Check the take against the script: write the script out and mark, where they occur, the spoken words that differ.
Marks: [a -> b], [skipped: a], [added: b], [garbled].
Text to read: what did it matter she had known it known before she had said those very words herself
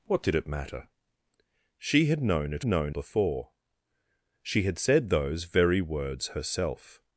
what did it matter she had known it known before she had said those very words herself